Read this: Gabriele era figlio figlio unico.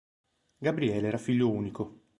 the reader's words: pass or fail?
fail